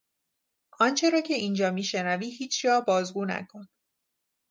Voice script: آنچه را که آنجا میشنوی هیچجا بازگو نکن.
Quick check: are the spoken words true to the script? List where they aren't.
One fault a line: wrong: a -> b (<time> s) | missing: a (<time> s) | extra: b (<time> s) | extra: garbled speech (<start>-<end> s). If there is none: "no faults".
wrong: آنجا -> اینجا (1.3 s)